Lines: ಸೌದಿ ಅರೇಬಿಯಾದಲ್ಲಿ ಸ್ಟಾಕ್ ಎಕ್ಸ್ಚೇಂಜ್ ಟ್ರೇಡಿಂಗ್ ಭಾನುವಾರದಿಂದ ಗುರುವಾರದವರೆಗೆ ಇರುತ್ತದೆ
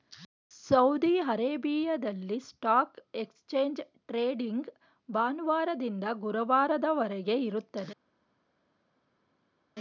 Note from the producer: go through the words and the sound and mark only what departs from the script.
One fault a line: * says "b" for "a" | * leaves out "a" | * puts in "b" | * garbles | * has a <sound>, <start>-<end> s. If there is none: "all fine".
all fine